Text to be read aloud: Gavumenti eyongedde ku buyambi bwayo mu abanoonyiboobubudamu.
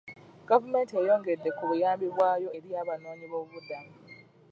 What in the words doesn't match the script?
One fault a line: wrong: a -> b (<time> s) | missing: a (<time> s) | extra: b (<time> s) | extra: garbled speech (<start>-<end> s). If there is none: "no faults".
wrong: mu -> eri (2.6 s)